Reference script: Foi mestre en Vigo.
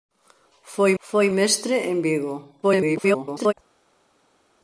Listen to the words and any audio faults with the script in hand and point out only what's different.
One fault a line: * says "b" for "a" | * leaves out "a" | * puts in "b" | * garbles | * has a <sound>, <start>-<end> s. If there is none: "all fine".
* puts in "foi"
* garbles